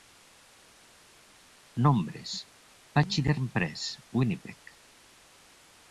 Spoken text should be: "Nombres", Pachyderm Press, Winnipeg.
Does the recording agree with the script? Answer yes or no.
yes